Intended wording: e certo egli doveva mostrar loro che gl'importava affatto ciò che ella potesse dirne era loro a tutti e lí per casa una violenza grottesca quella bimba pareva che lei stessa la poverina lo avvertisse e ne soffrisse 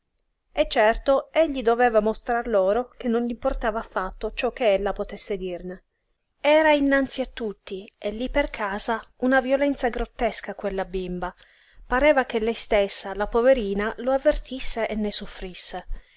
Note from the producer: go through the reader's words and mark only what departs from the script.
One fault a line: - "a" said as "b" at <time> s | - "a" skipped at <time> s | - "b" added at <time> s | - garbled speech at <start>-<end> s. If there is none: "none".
- "non" added at 3.1 s
- "loro" said as "innanzi" at 6.7 s